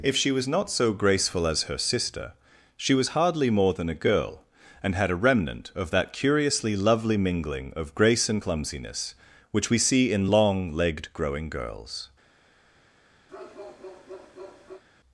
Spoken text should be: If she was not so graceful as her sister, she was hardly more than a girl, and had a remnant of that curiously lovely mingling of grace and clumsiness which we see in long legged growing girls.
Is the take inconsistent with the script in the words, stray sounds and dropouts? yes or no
yes